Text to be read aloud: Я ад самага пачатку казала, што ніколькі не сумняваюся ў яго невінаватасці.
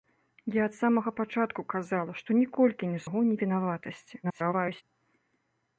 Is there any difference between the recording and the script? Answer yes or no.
yes